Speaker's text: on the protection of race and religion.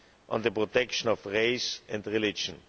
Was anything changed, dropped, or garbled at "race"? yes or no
no